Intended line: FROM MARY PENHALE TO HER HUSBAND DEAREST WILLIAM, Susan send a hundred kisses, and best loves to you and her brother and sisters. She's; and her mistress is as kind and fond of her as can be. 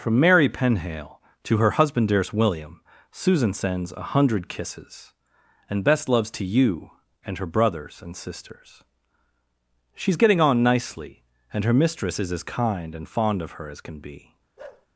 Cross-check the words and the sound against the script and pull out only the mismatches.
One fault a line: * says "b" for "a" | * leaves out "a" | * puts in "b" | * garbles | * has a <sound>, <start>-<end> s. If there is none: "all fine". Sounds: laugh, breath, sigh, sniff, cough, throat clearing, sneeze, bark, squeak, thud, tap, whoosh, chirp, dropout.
* says "sends" for "send"
* says "brothers" for "brother"
* puts in "getting on nicely"
* has a bark, 14.6-14.9 s